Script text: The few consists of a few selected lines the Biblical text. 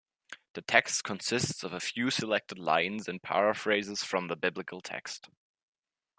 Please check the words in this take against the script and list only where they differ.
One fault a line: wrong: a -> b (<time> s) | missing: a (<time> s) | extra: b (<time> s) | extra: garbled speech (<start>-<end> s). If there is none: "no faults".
wrong: few -> text (0.6 s)
extra: and paraphrases from (3.1 s)